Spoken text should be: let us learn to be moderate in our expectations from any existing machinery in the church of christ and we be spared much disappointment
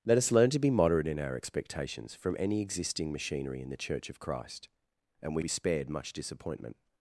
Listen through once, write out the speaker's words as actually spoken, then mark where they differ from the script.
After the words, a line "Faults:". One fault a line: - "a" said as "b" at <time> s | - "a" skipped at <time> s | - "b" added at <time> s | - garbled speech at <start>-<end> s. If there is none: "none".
let us learn to be moderate in our expectations from any existing machinery in the church of christ and we be spared much disappointment
Faults:
none